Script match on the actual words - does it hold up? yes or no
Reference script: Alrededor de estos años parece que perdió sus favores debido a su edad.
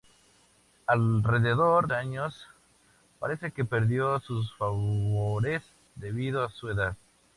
no